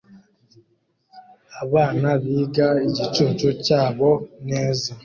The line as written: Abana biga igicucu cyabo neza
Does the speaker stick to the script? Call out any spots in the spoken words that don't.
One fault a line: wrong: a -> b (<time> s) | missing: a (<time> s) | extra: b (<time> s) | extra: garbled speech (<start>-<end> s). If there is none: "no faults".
no faults